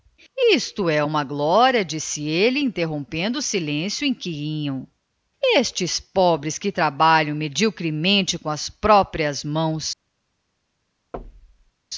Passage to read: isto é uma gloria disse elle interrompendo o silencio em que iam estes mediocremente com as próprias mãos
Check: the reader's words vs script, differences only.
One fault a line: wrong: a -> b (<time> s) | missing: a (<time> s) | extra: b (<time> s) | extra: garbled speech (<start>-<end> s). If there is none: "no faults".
extra: pobres que trabalham (6.0 s)